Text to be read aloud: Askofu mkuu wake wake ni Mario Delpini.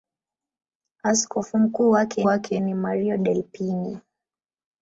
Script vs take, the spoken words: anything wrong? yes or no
no